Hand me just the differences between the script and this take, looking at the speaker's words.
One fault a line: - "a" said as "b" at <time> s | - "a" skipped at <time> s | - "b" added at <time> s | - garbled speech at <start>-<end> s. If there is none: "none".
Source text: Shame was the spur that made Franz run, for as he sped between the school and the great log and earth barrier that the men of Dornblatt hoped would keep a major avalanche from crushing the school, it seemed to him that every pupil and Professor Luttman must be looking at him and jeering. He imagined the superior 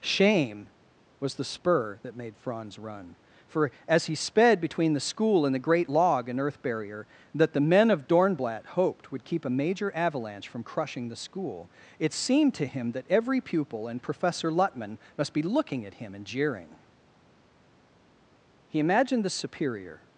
none